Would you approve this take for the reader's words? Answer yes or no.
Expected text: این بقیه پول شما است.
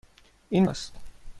no